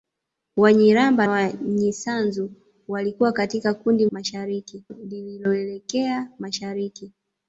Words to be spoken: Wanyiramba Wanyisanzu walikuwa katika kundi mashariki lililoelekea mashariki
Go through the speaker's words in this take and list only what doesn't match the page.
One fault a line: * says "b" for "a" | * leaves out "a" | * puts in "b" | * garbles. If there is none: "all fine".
all fine